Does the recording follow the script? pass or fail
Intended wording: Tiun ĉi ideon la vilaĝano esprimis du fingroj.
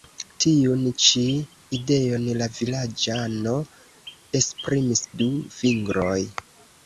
pass